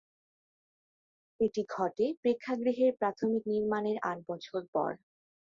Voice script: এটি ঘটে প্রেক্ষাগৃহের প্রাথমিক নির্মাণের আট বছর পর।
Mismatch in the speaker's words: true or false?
false